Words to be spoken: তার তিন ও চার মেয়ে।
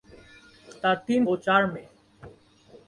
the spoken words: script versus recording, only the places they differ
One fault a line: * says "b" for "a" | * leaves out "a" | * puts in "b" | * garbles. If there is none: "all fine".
all fine